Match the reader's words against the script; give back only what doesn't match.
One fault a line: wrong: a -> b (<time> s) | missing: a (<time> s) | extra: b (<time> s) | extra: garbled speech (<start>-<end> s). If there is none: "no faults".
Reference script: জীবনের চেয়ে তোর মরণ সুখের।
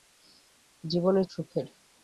missing: চেয়ে তোর মরণ (1.2 s)